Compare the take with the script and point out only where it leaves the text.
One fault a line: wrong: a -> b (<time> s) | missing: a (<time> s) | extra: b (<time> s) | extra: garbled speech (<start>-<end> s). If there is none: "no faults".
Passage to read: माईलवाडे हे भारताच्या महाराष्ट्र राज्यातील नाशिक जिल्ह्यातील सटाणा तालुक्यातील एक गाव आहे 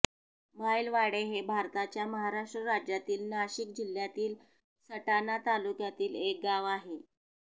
no faults